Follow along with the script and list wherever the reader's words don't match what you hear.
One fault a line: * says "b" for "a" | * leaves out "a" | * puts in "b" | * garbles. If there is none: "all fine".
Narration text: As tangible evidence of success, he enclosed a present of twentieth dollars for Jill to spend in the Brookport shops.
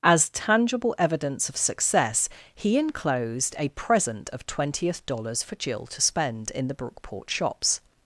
all fine